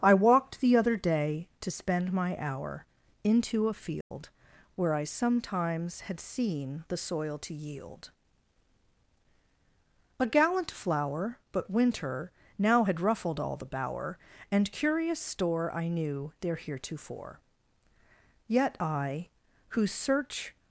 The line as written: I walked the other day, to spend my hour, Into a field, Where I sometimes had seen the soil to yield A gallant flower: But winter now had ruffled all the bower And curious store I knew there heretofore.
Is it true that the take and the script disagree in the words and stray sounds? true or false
true